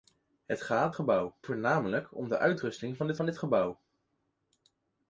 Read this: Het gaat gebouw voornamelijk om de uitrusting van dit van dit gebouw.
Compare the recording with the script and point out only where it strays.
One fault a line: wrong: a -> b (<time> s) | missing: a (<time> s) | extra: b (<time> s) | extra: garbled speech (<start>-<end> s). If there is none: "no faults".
no faults